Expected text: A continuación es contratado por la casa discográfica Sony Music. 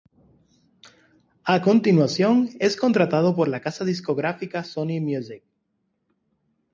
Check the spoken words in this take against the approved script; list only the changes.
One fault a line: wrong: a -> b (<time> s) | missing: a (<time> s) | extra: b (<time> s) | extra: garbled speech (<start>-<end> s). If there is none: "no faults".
no faults